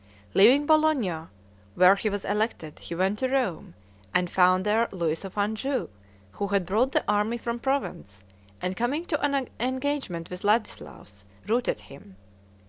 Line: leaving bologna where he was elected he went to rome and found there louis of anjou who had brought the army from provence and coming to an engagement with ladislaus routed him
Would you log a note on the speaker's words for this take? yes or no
no